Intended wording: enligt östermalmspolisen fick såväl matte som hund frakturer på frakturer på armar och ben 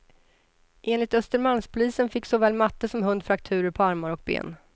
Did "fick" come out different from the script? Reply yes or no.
no